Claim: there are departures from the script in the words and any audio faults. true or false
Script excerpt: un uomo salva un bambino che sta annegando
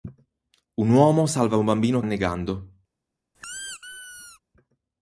true